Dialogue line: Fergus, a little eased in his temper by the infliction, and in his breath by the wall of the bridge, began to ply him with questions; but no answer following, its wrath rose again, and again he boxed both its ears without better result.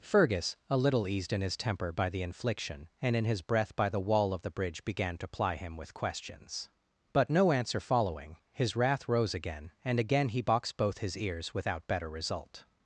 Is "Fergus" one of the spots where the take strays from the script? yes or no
no